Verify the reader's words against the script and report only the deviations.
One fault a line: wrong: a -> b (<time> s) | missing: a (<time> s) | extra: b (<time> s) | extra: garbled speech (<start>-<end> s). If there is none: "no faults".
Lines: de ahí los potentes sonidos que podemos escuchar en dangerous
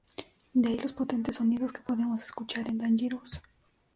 no faults